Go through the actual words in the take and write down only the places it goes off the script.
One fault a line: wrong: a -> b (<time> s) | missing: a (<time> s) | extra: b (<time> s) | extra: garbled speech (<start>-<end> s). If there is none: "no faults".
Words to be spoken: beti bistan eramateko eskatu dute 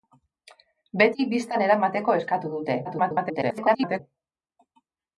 extra: garbled speech (2.8-4.0 s)